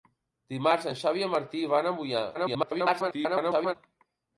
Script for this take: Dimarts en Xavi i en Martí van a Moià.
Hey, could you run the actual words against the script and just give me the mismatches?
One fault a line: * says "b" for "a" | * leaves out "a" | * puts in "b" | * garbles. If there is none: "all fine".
* garbles